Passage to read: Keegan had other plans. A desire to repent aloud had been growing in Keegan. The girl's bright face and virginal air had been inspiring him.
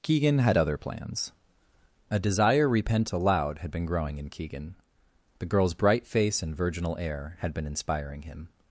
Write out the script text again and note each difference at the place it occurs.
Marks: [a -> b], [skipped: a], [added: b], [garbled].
Keegan had other plans. A desire [skipped: to] repent aloud had been growing in Keegan. The girl's bright face and virginal air had been inspiring him.